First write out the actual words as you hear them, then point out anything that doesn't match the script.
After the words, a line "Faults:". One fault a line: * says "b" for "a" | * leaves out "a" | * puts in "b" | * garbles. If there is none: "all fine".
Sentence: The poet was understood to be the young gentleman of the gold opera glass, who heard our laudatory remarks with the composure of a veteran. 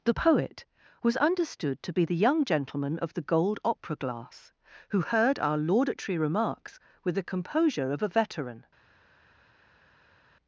The poet was understood to be the young gentleman of the gold opera glass, who heard our laudatory remarks with the composure of a veteran.
Faults:
all fine